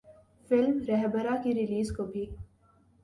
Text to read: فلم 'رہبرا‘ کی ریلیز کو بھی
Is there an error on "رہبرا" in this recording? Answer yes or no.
no